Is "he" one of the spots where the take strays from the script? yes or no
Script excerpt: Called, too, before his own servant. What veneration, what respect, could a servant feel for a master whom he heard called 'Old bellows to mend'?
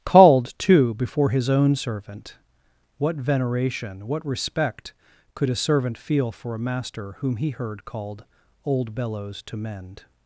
no